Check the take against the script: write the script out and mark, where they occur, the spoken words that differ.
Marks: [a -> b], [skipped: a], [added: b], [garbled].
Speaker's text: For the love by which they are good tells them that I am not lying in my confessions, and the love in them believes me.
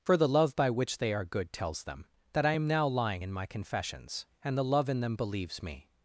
For the love by which they are good tells them that I am [not -> now] lying in my confessions, and the love in them believes me.